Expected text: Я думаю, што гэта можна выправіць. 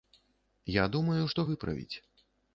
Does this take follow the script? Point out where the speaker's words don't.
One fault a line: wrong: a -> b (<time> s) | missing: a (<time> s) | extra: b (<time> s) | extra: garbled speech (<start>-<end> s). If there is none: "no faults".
missing: гэта можна (1.4 s)